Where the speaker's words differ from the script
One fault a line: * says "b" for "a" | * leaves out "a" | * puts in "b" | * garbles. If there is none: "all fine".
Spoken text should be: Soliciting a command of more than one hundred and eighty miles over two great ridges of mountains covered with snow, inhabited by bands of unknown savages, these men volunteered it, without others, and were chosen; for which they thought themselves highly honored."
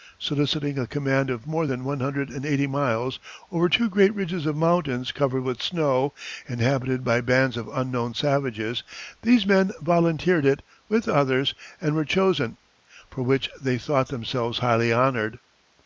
* says "with" for "without"